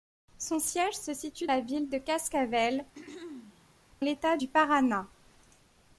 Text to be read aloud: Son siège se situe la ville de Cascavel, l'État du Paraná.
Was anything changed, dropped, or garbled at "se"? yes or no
no